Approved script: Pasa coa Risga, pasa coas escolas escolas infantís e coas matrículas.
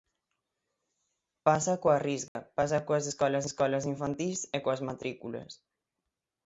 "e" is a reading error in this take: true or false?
false